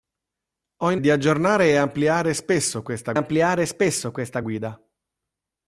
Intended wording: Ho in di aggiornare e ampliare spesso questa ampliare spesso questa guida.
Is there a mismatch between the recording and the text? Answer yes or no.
no